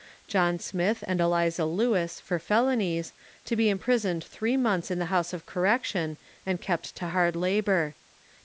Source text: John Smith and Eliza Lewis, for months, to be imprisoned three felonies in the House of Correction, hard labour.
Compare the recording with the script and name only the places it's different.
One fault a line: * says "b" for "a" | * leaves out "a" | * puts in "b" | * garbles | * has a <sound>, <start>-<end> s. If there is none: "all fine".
* says "felonies" for "months"
* says "months" for "felonies"
* puts in "and kept to"